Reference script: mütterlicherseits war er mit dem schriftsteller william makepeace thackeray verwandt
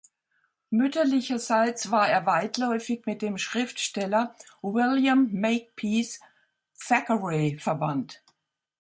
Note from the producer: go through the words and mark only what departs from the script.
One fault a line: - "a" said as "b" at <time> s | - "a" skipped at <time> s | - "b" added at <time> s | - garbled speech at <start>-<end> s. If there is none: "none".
- "weitläufig" added at 2.2 s